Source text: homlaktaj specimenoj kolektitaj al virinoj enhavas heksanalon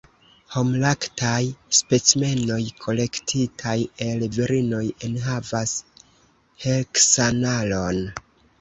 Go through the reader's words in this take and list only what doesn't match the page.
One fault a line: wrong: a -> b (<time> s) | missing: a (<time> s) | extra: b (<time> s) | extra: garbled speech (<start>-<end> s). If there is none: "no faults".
wrong: al -> el (4.1 s)